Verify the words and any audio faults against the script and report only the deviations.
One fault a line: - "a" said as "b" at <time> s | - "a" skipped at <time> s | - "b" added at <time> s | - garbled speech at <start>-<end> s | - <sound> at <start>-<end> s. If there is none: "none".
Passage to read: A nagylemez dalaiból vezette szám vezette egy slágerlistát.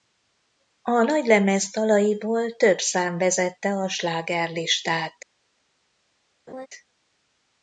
- "vezette" said as "több" at 2.6 s
- "egy" said as "a" at 3.7 s
- laugh at 6.5-6.7 s